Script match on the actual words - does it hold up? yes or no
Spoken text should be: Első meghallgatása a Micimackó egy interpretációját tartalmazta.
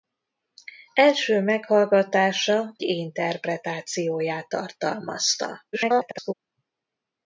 no